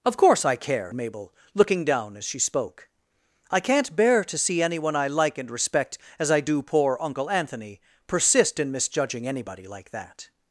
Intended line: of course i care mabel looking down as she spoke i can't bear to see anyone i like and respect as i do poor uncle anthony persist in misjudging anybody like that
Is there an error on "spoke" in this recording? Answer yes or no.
no